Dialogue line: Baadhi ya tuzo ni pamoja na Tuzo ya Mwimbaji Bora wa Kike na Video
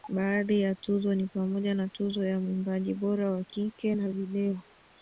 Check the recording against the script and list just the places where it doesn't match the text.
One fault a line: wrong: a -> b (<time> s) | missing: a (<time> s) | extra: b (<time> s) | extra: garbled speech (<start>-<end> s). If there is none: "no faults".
no faults